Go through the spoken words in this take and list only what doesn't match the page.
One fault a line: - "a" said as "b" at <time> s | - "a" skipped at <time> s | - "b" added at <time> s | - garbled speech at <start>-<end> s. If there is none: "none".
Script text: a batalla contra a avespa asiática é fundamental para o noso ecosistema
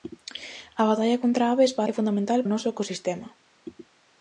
- "asiática" skipped at 1.8 s
- "para" skipped at 2.4 s